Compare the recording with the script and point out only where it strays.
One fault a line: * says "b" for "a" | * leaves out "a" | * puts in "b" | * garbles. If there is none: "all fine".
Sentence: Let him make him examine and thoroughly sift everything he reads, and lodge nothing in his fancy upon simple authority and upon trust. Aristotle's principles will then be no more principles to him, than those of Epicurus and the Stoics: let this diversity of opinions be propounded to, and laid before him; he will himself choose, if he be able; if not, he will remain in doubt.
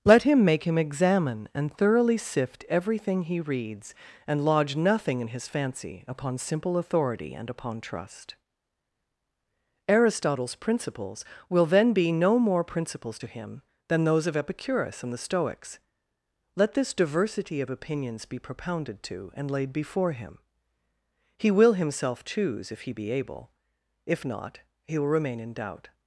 all fine